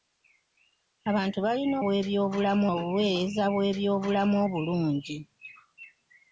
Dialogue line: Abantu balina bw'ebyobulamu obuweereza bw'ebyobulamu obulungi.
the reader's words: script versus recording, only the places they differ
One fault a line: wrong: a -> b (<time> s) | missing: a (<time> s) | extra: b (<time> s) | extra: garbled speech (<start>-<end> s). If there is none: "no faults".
no faults